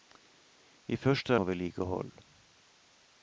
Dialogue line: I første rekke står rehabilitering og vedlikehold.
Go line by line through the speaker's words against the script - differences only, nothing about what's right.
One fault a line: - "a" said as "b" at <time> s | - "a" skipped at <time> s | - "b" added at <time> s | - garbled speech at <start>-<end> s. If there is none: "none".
- "rekke står rehabilitering" skipped at 1.4 s